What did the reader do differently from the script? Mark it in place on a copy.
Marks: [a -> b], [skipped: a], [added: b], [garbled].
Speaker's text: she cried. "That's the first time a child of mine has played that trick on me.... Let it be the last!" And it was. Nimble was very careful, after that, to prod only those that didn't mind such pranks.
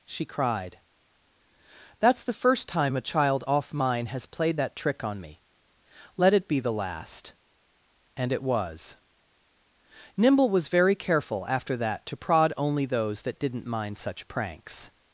she cried. "That's the first time a child [of -> off] mine has played that trick on me.... Let it be the last!" And it was. Nimble was very careful, after that, to prod only those that didn't mind such pranks.